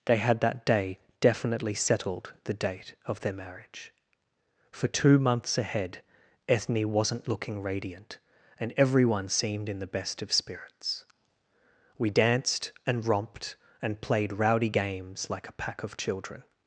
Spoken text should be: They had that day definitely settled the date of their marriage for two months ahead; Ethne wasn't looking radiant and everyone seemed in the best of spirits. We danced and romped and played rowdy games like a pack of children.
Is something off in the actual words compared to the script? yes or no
no